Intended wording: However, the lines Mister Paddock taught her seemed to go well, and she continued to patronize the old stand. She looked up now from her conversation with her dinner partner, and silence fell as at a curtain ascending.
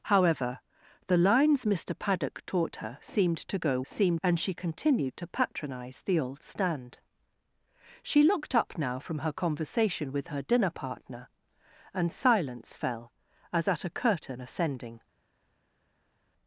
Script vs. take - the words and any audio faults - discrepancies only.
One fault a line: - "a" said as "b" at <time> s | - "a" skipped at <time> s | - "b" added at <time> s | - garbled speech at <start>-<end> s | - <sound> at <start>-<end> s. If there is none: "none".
- "well" said as "seemed" at 3.8 s